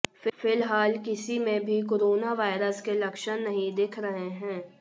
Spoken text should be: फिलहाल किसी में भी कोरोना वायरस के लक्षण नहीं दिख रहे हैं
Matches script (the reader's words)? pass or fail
pass